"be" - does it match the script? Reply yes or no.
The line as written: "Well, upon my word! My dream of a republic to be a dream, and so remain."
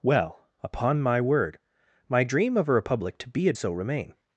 yes